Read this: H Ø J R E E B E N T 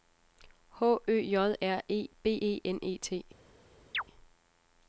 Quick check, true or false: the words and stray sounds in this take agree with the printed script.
false